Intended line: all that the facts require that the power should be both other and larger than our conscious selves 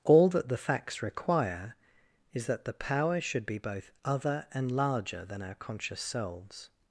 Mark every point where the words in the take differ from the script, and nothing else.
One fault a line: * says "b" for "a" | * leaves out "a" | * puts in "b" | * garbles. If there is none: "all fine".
* puts in "is"